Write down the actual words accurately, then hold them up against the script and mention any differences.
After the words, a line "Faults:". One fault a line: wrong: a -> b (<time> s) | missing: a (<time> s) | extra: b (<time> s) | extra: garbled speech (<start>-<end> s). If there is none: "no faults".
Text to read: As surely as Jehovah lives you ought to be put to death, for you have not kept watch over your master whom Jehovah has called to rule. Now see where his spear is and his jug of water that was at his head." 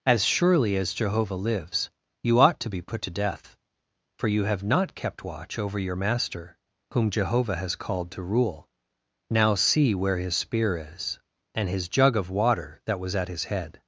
As surely as Jehovah lives you ought to be put to death, for you have not kept watch over your master whom Jehovah has called to rule. Now see where his spear is and his jug of water that was at his head."
Faults:
no faults